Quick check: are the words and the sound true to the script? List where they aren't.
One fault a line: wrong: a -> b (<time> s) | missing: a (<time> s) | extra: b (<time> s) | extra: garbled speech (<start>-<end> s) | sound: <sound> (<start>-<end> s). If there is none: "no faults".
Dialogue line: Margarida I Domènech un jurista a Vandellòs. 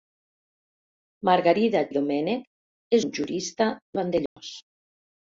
sound: dropout (4.3-4.4 s)